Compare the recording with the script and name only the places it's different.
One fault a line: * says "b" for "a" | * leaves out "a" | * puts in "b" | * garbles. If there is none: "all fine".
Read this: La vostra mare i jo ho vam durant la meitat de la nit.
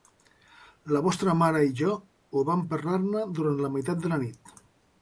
* puts in "parlar ne"